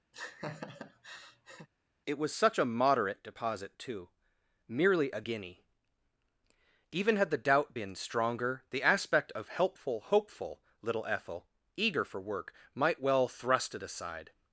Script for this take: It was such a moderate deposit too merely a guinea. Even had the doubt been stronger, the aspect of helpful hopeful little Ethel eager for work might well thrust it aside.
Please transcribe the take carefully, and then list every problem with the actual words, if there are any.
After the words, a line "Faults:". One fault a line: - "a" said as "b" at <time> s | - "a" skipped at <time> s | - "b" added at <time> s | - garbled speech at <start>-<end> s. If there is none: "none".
It was such a moderate deposit too merely a guinea. Even had the doubt been stronger, the aspect of helpful hopeful little Ethel eager for work might well thrust it aside.
Faults:
none